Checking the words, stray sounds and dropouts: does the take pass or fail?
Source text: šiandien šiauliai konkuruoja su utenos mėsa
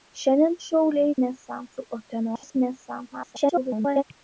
fail